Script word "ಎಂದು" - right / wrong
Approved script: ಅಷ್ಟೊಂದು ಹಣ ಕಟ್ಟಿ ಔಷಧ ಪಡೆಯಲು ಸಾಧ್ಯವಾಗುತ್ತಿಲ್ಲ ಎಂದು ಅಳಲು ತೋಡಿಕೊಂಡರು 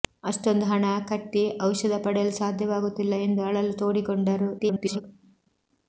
right